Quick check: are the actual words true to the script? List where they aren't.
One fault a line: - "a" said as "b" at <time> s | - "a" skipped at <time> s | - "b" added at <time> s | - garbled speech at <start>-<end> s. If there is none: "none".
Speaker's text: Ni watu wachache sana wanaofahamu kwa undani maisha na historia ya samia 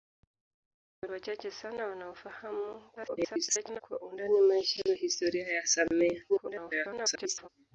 - "watu" skipped at 1.1 s
- garbled speech at 3.0-3.8 s
- garbled speech at 6.3-7.5 s